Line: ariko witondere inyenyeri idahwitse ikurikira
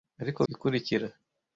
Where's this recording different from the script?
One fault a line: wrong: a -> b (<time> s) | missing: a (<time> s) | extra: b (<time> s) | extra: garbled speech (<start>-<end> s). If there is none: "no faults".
missing: witondere inyenyeri idahwitse (0.4 s)